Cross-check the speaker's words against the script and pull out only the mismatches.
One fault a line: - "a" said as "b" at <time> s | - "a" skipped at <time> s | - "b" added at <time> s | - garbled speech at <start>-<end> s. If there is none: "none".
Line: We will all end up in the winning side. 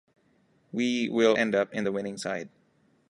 - "all" skipped at 1.4 s